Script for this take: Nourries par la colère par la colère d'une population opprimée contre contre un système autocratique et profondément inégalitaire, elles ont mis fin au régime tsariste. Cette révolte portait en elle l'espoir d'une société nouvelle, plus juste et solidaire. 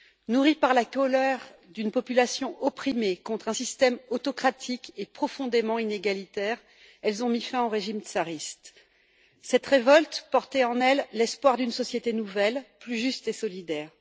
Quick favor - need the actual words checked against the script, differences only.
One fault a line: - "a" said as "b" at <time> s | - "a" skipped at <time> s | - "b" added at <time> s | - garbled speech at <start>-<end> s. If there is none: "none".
- "par la colère" skipped at 1.4 s
- "contre" skipped at 3.5 s